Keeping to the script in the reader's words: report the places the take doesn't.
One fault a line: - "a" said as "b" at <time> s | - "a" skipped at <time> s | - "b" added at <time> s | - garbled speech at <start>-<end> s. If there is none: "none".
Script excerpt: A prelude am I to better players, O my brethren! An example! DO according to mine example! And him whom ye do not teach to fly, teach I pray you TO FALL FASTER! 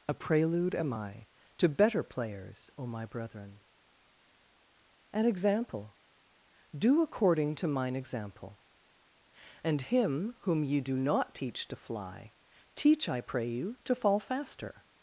none